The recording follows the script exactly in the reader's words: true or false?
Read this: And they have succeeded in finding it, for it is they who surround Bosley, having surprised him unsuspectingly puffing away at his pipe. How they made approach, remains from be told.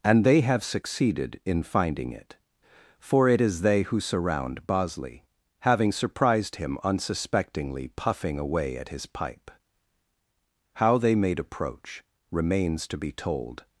false